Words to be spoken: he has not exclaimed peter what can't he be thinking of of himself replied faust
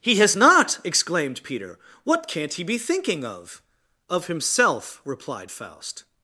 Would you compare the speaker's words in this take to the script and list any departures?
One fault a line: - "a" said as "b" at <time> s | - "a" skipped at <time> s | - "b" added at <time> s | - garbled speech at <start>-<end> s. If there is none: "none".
none